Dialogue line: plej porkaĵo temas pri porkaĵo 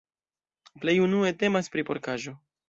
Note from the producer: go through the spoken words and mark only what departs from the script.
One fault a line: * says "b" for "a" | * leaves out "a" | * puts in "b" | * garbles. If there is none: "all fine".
* says "unue" for "porkaĵo"